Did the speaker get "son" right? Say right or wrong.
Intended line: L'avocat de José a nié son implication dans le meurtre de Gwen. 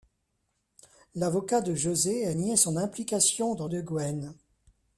right